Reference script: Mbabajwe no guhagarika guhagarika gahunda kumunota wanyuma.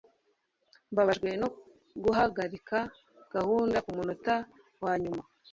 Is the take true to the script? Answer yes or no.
no